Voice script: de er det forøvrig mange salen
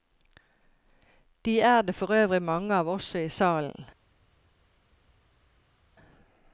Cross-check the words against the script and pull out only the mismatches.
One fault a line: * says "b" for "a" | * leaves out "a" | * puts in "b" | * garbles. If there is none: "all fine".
* puts in "av også i"